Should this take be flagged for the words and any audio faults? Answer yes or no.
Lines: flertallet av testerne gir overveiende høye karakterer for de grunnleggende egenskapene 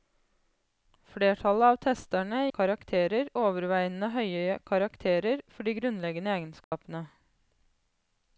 yes